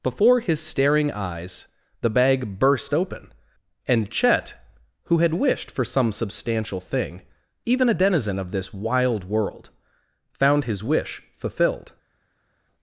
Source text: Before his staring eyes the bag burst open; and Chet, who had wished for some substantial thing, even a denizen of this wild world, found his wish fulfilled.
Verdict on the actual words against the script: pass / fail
pass